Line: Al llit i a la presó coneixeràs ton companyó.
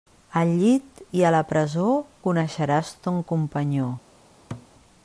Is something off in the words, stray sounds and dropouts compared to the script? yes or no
yes